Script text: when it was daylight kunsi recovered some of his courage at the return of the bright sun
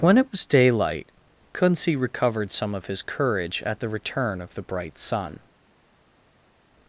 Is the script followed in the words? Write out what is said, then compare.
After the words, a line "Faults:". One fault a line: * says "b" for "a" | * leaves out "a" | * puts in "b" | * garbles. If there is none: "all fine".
when it was daylight kunsi recovered some of his courage at the return of the bright sun
Faults:
all fine